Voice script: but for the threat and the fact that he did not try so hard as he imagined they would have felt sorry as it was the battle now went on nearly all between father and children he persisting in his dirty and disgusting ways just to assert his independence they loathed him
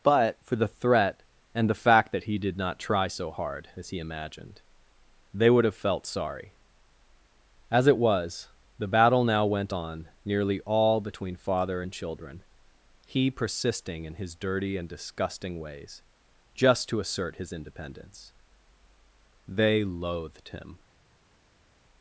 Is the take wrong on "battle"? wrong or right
right